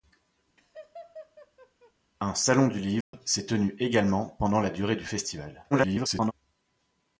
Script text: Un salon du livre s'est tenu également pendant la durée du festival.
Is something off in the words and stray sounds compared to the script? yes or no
yes